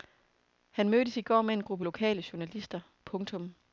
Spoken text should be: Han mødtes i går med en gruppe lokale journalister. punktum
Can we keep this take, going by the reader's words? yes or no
yes